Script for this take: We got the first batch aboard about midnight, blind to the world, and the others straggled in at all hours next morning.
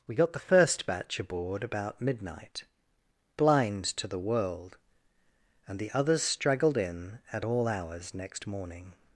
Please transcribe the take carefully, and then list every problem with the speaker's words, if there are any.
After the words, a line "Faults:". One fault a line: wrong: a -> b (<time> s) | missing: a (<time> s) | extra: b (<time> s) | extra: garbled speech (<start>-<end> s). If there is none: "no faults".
We got the first batch aboard about midnight, blind to the world, and the others straggled in at all hours next morning.
Faults:
no faults